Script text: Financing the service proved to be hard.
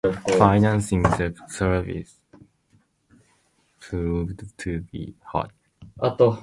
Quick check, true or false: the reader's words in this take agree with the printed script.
true